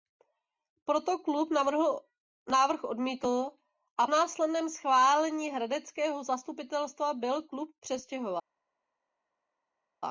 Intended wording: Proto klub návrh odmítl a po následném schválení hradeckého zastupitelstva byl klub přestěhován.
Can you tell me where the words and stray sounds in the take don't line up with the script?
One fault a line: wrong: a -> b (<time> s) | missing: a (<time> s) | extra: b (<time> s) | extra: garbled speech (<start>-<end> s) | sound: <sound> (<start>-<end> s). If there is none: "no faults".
missing: po (4.1 s)